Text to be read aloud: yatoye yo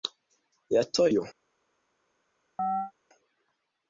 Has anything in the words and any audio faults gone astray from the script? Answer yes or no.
yes